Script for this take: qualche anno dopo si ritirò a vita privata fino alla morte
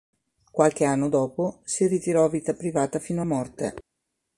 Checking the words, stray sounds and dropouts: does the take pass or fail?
fail